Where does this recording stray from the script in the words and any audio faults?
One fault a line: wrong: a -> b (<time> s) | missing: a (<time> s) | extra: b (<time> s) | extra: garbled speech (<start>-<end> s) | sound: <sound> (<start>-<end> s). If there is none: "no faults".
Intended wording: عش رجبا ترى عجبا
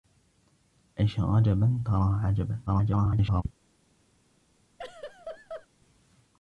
extra: garbled speech (2.7-3.4 s)
sound: laugh (4.8-5.7 s)